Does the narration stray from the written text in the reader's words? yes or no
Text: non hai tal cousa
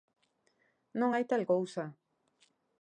no